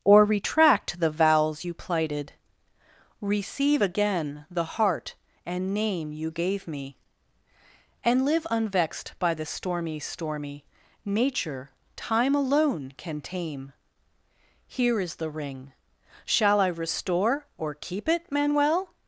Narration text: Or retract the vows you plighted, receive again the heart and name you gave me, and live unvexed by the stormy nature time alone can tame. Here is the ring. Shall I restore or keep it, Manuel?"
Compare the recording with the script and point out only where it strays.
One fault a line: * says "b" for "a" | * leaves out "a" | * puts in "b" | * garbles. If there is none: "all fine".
* puts in "stormy"